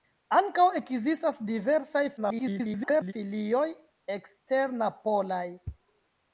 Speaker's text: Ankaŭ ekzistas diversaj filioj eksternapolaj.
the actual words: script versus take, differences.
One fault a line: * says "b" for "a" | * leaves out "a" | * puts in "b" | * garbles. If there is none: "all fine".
* garbles